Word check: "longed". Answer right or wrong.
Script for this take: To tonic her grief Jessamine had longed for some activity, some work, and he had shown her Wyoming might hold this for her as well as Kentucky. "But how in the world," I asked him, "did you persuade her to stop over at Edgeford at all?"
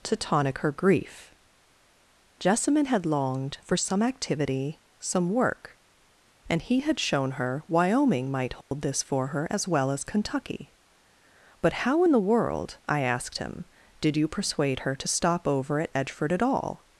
right